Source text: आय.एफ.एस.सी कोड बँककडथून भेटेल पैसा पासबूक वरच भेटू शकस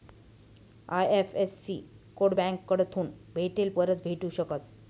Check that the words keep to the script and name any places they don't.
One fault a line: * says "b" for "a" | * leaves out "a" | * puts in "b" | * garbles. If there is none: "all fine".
* leaves out "पैसा पासबूक"